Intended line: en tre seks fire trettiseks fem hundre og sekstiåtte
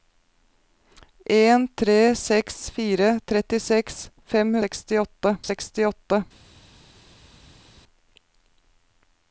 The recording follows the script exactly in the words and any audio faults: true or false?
false